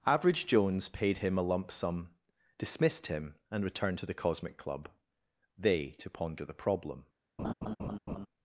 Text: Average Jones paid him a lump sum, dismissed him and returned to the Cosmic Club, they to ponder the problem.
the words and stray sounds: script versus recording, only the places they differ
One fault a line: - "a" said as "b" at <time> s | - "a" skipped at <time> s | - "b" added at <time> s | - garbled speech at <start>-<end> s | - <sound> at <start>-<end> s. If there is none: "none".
- laugh at 7.4-8.3 s